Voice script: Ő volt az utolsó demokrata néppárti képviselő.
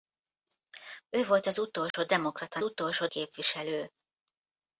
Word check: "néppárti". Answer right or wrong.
wrong